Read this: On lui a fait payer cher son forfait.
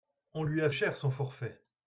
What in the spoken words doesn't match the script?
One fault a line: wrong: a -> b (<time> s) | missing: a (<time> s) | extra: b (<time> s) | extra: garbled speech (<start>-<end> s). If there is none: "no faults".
missing: fait payer (0.7 s)